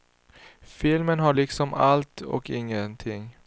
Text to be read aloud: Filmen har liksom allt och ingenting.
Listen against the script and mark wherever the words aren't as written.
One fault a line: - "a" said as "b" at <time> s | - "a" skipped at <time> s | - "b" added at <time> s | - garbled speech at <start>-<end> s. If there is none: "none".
none